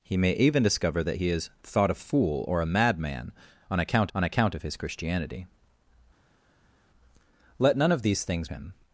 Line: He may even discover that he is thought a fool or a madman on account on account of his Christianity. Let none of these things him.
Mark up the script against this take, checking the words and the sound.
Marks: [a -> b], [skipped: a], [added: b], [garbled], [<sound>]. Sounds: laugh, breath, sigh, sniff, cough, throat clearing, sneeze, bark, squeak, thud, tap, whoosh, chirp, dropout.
He may even discover that he is thought a fool or a madman on account on account of his Christianity. Let none of these things him.